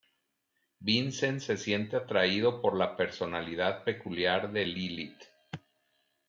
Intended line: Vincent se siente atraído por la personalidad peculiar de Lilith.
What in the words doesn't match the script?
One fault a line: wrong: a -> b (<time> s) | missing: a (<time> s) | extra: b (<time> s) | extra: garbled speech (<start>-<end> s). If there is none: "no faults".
no faults